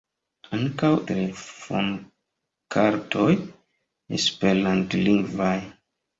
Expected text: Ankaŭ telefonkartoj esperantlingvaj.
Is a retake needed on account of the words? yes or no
no